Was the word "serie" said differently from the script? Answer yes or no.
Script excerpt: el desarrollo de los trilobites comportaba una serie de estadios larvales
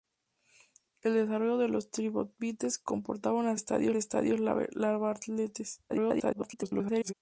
yes